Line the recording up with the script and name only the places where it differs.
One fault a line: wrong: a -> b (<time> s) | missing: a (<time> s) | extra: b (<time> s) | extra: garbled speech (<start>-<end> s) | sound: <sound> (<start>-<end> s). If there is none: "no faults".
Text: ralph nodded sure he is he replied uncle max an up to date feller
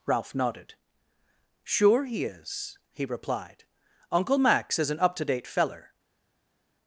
extra: is (4.8 s)